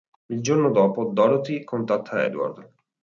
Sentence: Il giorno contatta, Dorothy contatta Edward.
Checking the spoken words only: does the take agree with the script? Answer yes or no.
no